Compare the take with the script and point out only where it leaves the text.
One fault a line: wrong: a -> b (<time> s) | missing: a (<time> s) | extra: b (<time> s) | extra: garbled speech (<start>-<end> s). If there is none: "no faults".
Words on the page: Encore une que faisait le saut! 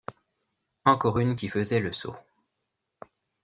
wrong: que -> qui (1.3 s)